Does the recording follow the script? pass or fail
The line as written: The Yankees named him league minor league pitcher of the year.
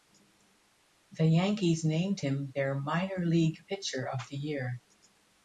fail